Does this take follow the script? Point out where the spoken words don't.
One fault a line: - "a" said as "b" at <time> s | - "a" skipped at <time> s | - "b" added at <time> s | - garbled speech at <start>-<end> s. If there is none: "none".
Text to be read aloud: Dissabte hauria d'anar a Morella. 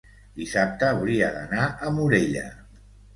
none